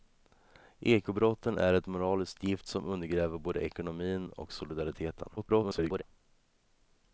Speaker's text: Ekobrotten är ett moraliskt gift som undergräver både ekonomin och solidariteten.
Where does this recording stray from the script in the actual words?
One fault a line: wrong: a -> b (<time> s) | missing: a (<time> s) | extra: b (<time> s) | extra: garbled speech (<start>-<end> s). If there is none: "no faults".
extra: garbled speech (5.4-6.0 s)